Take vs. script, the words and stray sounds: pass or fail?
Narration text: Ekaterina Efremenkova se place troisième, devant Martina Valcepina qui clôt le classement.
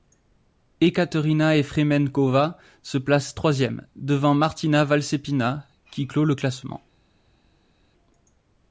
pass